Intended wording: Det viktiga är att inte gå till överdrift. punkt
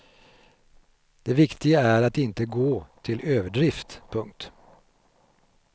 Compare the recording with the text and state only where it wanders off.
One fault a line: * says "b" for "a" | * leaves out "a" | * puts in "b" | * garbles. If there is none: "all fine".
all fine